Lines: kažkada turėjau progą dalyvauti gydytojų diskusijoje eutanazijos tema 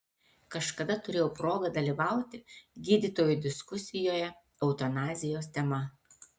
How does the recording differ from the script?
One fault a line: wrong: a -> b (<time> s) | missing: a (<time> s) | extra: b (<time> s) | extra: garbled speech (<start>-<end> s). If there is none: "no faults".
no faults